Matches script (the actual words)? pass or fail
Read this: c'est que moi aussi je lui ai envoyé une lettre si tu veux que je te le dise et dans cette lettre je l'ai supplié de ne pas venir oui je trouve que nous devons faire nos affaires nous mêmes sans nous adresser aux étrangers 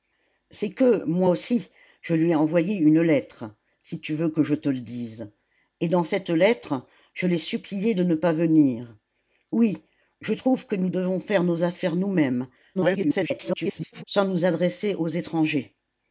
fail